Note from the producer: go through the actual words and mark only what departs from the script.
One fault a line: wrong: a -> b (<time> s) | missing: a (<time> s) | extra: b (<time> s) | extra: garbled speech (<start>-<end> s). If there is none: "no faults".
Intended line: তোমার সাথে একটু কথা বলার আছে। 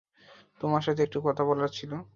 wrong: আছে -> ছিল (1.7 s)